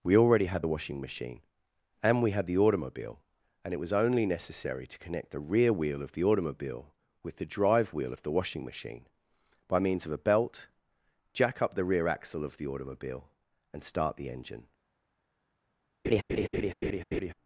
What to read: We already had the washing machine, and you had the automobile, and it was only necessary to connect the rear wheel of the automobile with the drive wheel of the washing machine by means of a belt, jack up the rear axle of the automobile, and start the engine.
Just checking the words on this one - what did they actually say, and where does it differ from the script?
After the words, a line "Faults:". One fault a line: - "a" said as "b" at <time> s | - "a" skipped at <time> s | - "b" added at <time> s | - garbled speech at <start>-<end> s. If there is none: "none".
We already had the washing machine, and we had the automobile, and it was only necessary to connect the rear wheel of the automobile with the drive wheel of the washing machine by means of a belt, jack up the rear axle of the automobile, and start the engine.
Faults:
- "you" said as "we" at 2.2 s